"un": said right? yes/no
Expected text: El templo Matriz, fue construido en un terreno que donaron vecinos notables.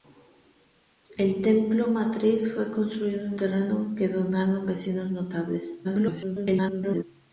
no